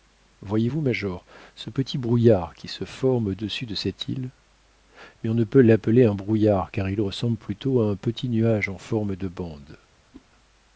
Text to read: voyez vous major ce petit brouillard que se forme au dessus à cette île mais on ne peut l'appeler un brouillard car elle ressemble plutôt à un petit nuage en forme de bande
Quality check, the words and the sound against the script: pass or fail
fail